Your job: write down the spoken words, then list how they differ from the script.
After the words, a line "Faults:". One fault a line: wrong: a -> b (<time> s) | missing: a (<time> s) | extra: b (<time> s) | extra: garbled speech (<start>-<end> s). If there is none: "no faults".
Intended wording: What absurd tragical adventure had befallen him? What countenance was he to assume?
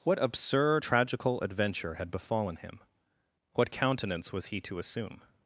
What absurd tragical adventure had befallen him? What countenance was he to assume?
Faults:
no faults